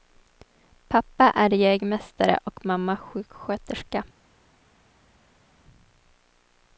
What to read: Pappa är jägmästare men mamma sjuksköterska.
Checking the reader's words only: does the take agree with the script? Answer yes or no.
no